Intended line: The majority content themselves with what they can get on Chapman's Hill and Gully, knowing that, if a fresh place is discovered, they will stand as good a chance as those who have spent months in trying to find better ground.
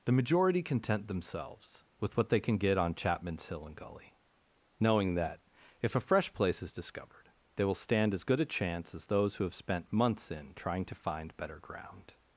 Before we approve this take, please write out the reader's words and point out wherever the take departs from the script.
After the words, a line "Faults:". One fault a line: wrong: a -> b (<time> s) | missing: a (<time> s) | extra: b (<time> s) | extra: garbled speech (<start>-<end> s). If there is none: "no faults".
The majority content themselves with what they can get on Chapman's Hill and Gully, knowing that, if a fresh place is discovered, they will stand as good a chance as those who have spent months in trying to find better ground.
Faults:
no faults